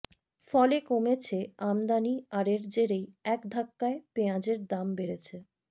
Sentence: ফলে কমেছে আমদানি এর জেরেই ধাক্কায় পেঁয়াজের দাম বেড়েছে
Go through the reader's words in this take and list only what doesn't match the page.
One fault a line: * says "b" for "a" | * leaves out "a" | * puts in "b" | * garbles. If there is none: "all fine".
* puts in "আর"
* puts in "এক"